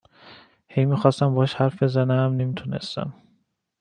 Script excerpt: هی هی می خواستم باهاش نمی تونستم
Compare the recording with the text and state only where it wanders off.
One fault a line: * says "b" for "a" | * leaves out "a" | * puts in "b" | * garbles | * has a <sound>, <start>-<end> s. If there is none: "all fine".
* leaves out "هی"
* puts in "حرف بزنم"